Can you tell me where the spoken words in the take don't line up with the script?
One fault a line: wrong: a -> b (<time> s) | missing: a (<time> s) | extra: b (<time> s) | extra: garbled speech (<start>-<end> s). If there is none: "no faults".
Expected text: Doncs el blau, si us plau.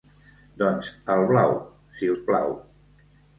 no faults